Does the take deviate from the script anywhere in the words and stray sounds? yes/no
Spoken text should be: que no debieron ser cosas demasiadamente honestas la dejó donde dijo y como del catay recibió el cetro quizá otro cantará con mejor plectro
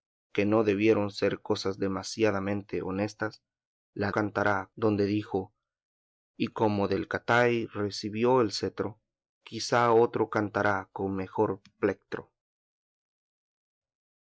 yes